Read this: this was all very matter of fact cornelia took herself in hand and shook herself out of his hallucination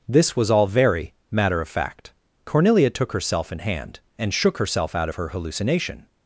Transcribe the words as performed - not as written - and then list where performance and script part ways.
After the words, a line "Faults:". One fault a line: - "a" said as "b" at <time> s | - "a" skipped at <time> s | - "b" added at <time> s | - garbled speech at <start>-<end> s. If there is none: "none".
this was all very matter of fact cornelia took herself in hand and shook herself out of her hallucination
Faults:
- "his" said as "her" at 5.2 s